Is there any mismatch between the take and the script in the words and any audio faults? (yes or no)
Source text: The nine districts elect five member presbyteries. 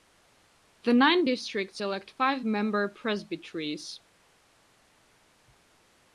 no